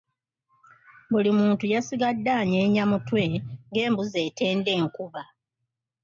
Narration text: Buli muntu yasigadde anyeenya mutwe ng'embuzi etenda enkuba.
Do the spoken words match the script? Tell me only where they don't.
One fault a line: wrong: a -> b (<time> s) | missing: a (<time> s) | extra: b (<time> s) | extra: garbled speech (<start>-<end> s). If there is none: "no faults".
no faults